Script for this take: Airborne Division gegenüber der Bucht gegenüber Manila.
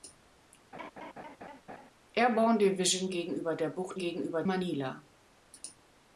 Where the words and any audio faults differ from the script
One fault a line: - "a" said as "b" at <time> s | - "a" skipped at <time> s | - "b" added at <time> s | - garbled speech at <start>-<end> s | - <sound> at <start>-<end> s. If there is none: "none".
- laugh at 0.7-1.9 s